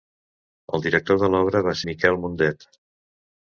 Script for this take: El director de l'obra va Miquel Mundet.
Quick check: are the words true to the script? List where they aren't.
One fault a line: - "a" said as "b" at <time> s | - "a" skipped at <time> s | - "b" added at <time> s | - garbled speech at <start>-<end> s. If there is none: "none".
none